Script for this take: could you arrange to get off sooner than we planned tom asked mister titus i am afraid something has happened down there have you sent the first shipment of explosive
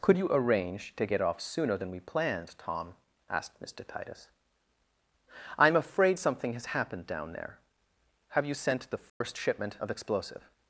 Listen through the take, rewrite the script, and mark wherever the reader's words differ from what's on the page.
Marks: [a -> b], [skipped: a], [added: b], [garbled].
could you arrange to get off sooner than we planned tom asked mister titus i am afraid something has happened down there have you sent the first shipment of explosive